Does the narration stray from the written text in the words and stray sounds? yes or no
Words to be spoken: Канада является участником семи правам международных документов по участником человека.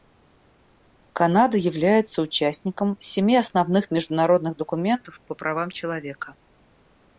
yes